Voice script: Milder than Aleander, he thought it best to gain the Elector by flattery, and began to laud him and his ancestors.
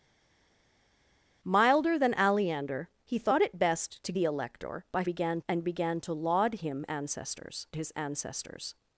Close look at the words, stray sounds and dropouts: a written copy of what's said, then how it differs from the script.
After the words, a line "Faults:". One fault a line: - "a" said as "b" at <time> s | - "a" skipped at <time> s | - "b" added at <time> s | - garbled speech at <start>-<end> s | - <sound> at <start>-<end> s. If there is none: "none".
Milder than Aleander, he thought it best to the Elector by began, and began to laud him ancestors his ancestors.
Faults:
- "gain" skipped at 4.1 s
- "flattery" said as "began" at 5.0 s
- "and" said as "ancestors" at 6.9 s